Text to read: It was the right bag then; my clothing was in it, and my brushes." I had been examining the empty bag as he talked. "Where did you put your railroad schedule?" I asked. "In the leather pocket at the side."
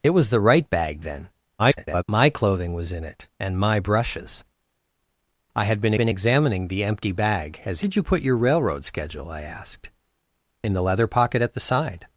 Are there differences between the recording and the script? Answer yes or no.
yes